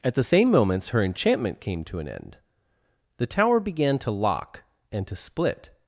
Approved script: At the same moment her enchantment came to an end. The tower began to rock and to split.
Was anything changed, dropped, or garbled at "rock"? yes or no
yes